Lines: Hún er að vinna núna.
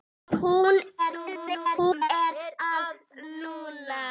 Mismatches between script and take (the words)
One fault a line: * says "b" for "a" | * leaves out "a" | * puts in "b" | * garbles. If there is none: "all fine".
* garbles
* leaves out "vinna"